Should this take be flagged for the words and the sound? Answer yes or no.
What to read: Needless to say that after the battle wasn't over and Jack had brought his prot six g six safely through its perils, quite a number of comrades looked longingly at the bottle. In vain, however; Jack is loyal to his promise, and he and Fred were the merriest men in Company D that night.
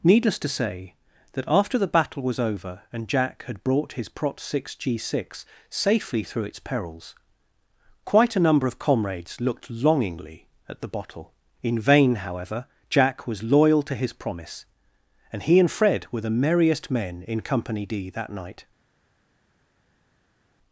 yes